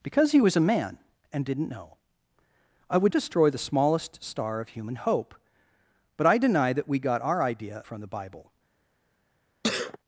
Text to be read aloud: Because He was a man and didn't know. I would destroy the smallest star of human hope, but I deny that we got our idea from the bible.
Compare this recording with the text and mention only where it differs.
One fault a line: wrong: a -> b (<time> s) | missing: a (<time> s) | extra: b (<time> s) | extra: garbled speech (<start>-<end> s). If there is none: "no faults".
no faults